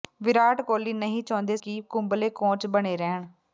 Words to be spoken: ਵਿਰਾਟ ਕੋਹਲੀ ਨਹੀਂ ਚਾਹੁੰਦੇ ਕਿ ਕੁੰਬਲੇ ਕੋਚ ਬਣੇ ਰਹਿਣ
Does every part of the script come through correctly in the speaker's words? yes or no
yes